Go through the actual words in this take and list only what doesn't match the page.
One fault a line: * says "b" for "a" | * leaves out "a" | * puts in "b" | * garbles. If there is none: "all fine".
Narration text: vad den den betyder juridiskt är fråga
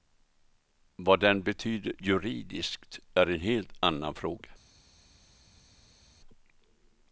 * leaves out "den"
* puts in "en helt annan"